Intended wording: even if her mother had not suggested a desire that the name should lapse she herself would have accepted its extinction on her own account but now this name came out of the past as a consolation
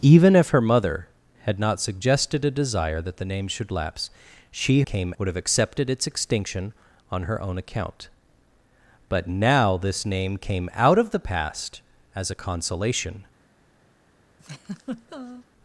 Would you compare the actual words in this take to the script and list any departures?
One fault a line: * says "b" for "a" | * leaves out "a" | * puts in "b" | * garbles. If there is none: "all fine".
* says "came" for "herself"